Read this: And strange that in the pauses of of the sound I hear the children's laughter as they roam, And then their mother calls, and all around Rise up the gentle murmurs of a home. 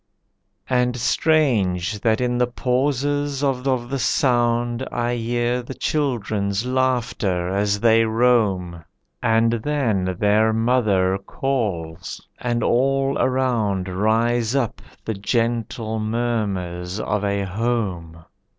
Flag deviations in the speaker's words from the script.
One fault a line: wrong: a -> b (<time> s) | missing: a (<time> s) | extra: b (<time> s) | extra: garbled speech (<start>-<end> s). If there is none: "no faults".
no faults